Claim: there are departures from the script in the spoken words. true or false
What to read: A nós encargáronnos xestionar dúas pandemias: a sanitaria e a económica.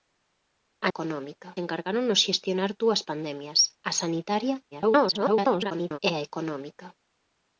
true